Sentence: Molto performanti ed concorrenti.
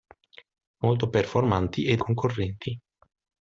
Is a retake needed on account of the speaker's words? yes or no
no